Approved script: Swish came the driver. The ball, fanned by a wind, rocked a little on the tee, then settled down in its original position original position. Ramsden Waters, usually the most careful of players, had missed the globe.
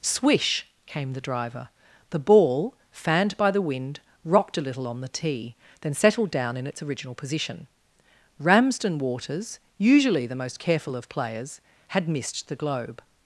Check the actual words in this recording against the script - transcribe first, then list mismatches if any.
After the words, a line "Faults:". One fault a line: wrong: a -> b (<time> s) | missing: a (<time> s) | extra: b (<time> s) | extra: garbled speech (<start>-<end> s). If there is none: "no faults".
Swish came the driver. The ball, fanned by the wind, rocked a little on the tee, then settled down in its original position. Ramsden Waters, usually the most careful of players, had missed the globe.
Faults:
wrong: a -> the (3.5 s)
missing: original position (7.7 s)